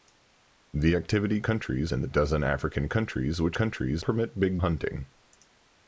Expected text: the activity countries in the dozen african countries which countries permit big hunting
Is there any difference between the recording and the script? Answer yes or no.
no